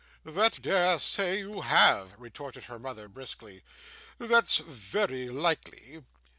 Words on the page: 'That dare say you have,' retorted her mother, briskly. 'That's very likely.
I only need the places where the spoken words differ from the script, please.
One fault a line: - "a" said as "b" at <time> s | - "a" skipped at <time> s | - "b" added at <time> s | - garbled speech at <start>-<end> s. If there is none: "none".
none